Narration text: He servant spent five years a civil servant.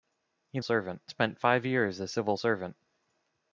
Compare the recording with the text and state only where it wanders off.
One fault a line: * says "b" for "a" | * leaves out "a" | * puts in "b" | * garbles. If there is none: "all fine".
all fine